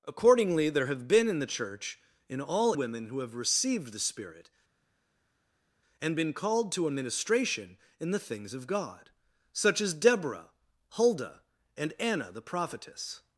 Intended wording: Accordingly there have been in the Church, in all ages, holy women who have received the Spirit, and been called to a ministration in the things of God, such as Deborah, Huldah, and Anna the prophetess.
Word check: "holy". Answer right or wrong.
wrong